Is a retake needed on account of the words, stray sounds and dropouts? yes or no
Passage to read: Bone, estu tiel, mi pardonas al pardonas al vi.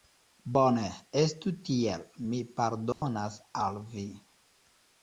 yes